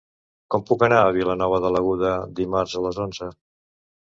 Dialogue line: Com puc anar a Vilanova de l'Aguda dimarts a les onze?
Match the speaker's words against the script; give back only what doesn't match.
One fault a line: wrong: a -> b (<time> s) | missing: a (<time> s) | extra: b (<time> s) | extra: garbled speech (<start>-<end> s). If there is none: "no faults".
no faults